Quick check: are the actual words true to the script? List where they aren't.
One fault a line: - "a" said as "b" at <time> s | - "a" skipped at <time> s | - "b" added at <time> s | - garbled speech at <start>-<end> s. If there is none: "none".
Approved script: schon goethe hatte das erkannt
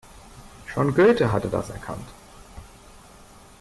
none